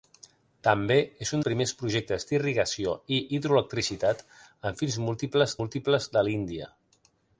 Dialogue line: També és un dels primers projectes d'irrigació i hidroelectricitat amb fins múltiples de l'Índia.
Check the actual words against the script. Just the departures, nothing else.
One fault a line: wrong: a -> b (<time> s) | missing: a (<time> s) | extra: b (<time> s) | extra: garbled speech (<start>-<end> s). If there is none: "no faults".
missing: dels (1.4 s)
extra: múltiples (5.6 s)